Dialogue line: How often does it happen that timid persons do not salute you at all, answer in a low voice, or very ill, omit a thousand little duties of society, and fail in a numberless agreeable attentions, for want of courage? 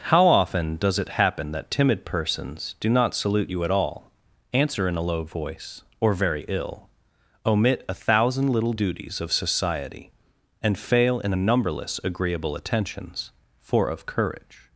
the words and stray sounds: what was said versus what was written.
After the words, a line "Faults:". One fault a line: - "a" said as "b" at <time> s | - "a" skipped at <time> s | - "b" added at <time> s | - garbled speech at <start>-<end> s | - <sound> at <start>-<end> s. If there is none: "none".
How often does it happen that timid persons do not salute you at all, answer in a low voice, or very ill, omit a thousand little duties of society, and fail in a numberless agreeable attentions, for of courage?
Faults:
- "want" skipped at 13.9 s